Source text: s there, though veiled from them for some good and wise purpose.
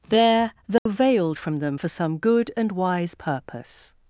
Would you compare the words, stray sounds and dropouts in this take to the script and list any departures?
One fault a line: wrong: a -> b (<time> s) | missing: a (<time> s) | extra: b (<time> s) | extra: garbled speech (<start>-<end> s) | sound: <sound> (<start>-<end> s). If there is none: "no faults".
missing: s (0.1 s)
sound: dropout (0.8-0.9 s)